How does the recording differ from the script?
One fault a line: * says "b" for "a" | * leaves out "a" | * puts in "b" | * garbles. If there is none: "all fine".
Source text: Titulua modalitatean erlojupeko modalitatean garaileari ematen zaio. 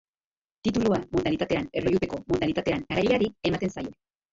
all fine